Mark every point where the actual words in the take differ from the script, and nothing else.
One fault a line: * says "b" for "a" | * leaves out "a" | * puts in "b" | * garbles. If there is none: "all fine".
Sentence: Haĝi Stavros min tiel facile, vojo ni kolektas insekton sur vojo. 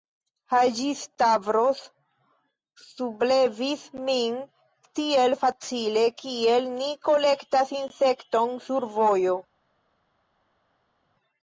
* puts in "sublevis"
* says "kiel" for "vojo"